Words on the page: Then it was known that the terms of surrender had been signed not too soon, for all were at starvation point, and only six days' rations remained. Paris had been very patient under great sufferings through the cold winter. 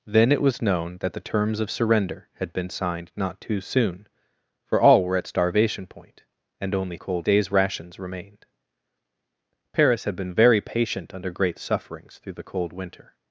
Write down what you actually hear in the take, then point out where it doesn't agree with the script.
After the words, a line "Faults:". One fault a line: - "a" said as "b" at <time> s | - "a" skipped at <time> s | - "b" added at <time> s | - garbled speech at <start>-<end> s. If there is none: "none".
Then it was known that the terms of surrender had been signed not too soon, for all were at starvation point, and only cold days' rations remained. Paris had been very patient under great sufferings through the cold winter.
Faults:
- "six" said as "cold" at 7.0 s